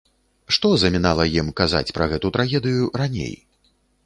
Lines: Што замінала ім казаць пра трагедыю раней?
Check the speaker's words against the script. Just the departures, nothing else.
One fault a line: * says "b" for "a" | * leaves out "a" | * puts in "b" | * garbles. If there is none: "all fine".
* puts in "гэту"